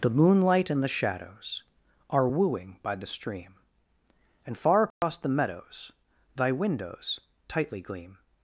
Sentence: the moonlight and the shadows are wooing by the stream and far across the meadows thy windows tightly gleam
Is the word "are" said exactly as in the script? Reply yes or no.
yes